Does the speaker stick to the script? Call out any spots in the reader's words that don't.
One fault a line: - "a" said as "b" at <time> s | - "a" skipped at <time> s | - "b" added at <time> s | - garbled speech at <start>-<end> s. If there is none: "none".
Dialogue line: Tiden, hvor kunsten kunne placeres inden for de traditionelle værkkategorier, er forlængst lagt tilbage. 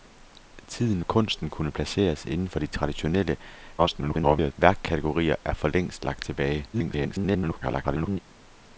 - "hvor" skipped at 1.0 s
- garbled speech at 3.8-4.5 s
- garbled speech at 6.7-8.2 s